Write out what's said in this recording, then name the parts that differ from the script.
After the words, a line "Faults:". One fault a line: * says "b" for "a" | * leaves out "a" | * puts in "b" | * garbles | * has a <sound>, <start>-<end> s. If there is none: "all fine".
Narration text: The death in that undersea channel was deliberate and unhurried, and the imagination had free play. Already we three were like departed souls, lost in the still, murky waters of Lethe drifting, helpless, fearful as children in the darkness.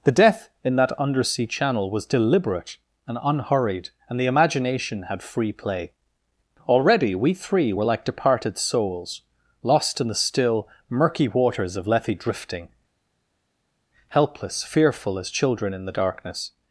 The death in that undersea channel was deliberate and unhurried, and the imagination had free play. Already we three were like departed souls, lost in the still, murky waters of Lethe drifting, helpless, fearful as children in the darkness.
Faults:
all fine